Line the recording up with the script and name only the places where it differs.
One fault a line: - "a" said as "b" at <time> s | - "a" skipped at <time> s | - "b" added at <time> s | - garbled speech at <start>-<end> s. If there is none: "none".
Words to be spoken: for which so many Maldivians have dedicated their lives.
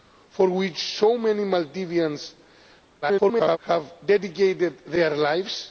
- garbled speech at 3.0-3.6 s